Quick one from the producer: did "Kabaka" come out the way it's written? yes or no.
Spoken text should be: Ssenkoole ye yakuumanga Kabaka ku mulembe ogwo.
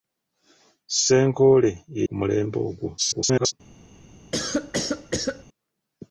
no